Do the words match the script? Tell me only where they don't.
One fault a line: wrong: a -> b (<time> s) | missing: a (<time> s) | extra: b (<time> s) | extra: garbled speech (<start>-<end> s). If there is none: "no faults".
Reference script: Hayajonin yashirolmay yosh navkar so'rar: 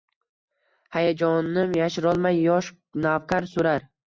no faults